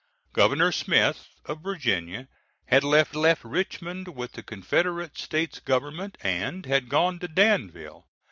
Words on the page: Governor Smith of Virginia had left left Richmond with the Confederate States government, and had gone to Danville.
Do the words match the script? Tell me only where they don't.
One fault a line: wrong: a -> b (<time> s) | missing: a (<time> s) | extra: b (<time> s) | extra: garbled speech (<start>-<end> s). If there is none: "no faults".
no faults